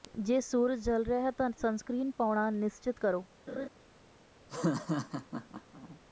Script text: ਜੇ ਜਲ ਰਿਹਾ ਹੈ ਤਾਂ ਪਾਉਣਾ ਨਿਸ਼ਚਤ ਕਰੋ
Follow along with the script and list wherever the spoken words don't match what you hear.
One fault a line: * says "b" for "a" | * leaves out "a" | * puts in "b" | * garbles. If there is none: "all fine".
* puts in "ਸੂਰਜ"
* puts in "ਸਨਸਕ੍ਰੀਨ"